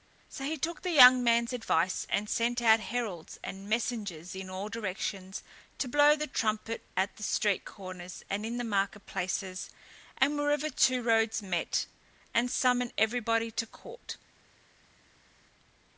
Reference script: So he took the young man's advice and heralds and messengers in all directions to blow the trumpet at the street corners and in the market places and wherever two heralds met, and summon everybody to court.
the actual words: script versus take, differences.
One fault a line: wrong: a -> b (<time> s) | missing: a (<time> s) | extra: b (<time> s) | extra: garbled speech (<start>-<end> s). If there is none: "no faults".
extra: sent out (2.3 s)
wrong: heralds -> roads (11.0 s)